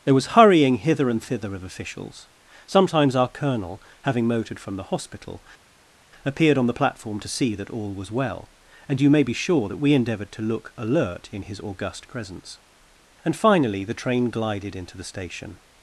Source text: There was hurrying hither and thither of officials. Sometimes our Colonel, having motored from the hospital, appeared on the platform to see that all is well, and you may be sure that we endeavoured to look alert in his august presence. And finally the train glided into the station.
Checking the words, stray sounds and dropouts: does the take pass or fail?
fail